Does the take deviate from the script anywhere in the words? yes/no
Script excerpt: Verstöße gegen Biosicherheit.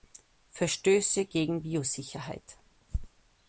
no